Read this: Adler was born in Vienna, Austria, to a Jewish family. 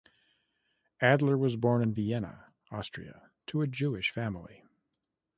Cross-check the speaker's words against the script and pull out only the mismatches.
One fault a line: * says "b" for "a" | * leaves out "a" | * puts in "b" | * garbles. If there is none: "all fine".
all fine